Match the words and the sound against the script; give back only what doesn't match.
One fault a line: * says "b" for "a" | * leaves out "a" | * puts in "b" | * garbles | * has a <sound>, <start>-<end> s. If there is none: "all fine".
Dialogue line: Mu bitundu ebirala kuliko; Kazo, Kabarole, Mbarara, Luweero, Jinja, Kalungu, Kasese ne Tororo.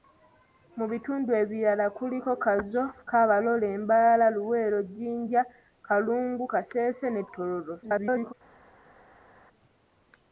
* garbles